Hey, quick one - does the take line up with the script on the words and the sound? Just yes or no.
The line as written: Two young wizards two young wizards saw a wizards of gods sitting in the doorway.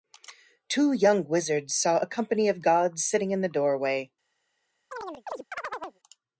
no